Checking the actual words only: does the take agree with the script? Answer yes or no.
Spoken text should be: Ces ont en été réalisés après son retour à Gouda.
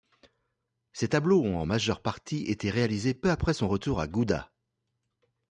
no